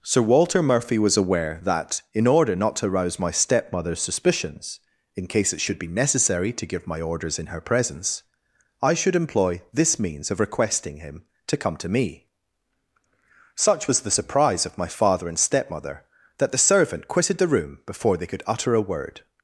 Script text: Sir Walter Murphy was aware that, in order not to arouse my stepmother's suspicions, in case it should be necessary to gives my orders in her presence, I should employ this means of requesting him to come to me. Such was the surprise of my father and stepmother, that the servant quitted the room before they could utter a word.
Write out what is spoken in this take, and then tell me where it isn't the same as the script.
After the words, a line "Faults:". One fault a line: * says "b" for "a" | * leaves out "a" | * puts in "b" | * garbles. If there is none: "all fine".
Sir Walter Murphy was aware that, in order not to arouse my stepmother's suspicions, in case it should be necessary to give my orders in her presence, I should employ this means of requesting him to come to me. Such was the surprise of my father and stepmother, that the servant quitted the room before they could utter a word.
Faults:
* says "give" for "gives"